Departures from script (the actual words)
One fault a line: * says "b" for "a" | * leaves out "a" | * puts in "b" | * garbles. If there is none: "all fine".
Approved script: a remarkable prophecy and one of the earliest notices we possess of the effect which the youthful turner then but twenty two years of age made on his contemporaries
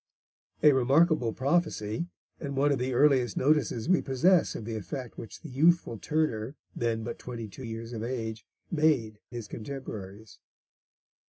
* leaves out "on"